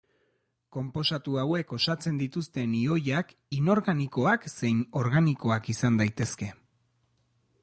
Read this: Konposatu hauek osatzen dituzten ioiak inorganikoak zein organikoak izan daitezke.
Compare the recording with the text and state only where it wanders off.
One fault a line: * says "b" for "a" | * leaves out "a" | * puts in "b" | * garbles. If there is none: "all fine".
all fine